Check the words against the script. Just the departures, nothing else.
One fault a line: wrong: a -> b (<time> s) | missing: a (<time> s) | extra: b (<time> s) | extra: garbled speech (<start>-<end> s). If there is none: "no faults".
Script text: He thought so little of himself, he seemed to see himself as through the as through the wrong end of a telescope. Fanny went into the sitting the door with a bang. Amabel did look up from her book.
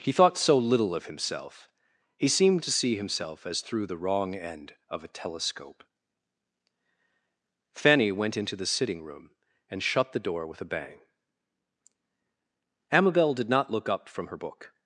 missing: as through the (4.0 s)
extra: room and shut (9.0 s)
extra: not (13.5 s)